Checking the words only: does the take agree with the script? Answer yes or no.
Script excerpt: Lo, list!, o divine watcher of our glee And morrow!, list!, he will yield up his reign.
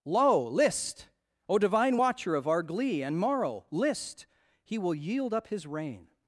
yes